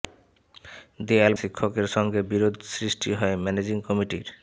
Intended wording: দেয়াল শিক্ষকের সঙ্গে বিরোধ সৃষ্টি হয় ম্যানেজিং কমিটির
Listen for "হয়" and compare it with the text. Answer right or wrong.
right